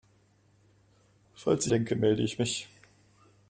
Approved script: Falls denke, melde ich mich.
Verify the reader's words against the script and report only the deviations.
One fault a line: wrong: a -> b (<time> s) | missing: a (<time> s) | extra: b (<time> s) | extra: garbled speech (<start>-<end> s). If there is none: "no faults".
no faults